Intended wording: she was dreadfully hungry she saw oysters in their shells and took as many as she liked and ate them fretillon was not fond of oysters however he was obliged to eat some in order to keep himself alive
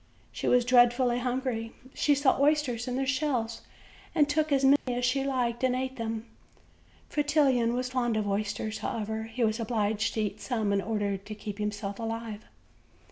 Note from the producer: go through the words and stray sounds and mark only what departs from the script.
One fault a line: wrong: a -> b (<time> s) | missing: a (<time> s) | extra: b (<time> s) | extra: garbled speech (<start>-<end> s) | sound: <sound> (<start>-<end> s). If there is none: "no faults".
sound: dropout (4.8-4.9 s)
missing: not (7.9 s)